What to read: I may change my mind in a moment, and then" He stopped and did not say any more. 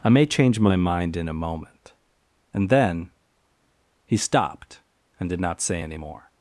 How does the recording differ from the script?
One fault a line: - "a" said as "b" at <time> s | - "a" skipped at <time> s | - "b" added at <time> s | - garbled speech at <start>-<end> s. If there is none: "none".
none